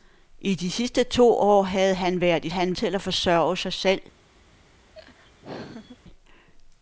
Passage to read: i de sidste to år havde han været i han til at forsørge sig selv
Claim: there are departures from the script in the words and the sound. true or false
true